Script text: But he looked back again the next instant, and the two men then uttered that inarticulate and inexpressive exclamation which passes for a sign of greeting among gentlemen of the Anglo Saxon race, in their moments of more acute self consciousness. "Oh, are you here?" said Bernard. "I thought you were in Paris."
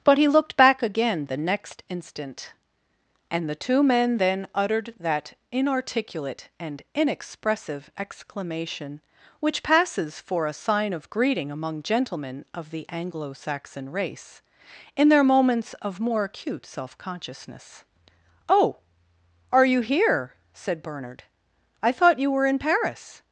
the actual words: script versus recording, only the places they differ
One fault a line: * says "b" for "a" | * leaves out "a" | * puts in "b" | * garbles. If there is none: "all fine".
all fine